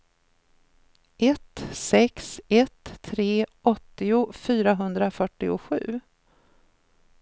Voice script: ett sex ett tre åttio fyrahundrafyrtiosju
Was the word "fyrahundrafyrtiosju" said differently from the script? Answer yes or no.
no